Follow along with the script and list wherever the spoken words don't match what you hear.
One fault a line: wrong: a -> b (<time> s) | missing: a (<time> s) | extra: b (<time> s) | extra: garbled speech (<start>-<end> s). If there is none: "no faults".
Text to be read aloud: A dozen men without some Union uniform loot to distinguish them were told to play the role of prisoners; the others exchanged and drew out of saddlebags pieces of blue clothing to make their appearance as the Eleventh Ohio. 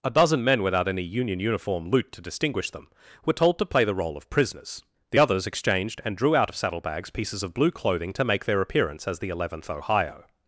wrong: some -> any (0.9 s)